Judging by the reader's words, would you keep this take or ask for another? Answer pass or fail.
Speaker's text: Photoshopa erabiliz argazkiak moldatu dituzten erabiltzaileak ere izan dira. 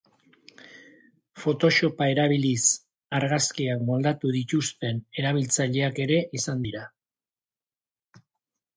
pass